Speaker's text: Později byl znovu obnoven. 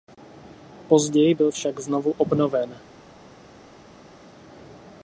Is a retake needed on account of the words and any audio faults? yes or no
yes